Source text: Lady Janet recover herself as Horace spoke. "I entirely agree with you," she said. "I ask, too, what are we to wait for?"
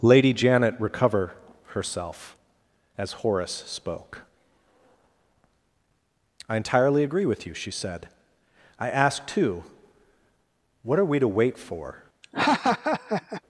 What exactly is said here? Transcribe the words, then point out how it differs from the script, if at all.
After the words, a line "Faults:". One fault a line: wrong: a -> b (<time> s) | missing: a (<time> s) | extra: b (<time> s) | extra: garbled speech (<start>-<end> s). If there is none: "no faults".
Lady Janet recover herself as Horace spoke. "I entirely agree with you," she said. "I ask, too, what are we to wait for?"
Faults:
no faults